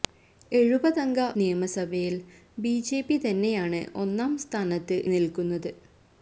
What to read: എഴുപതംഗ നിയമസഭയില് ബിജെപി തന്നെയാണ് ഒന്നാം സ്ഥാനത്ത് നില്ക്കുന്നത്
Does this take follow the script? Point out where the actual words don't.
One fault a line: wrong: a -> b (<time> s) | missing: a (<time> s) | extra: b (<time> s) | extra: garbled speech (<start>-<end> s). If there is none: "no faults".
no faults